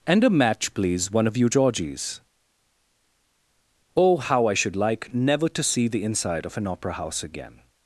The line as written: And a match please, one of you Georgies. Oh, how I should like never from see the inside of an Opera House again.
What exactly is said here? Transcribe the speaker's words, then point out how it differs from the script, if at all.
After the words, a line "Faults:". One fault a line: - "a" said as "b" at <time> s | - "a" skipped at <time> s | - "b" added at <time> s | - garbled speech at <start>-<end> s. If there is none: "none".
And a match please, one of you Georgies. Oh, how I should like never to see the inside of an Opera House again.
Faults:
- "from" said as "to" at 5.5 s